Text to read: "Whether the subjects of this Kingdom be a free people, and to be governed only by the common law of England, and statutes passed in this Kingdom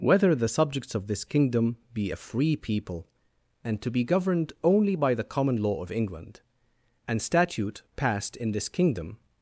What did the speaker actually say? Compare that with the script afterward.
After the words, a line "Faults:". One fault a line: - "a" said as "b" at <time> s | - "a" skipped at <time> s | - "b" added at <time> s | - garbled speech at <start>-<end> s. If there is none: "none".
"Whether the subjects of this Kingdom be a free people, and to be governed only by the common law of England, and statute passed in this Kingdom
Faults:
- "statutes" said as "statute" at 7.2 s